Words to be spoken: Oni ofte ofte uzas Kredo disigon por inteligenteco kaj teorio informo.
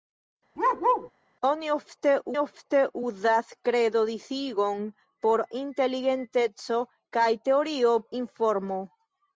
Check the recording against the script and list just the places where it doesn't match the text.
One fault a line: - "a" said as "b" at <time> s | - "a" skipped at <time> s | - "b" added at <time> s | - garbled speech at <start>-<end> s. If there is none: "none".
none